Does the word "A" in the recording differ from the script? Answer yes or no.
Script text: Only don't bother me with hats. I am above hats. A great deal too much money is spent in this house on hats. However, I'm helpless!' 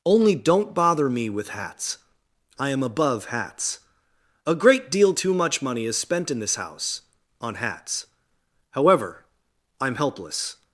no